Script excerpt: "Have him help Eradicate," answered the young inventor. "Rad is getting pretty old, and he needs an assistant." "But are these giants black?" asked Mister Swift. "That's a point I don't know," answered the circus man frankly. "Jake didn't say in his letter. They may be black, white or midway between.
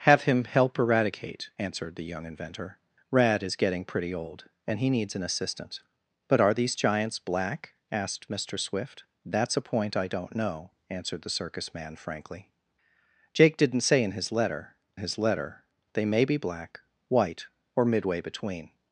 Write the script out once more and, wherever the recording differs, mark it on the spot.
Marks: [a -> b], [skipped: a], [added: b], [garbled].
"Have him help Eradicate," answered the young inventor. "Rad is getting pretty old, and he needs an assistant." "But are these giants black?" asked Mister Swift. "That's a point I don't know," answered the circus man frankly. "Jake didn't say in his letter. [added: his letter] They may be black, white or midway between.